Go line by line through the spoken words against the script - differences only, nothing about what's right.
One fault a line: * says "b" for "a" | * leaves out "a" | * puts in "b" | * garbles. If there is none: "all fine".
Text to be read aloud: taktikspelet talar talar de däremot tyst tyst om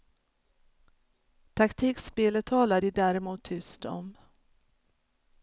* leaves out "talar"
* leaves out "tyst"